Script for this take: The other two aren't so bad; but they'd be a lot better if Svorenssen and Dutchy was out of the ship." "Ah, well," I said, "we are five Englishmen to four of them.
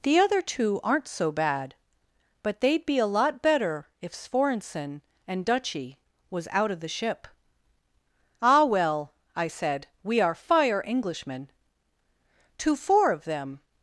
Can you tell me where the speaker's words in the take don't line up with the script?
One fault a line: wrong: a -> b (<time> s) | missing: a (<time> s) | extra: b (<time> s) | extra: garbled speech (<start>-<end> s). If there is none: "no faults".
wrong: five -> fire (10.4 s)